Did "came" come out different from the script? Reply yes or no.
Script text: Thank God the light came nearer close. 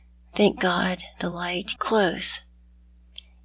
yes